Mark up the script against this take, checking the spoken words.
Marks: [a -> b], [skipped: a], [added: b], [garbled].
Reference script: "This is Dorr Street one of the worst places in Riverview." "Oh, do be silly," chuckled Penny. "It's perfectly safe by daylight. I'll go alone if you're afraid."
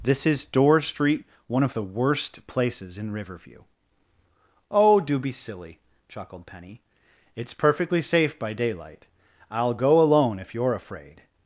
"This is Dorr Street one of the worst places in Riverview." "Oh, do be silly," chuckled Penny. "It's perfectly safe by daylight. I'll go alone if you're afraid."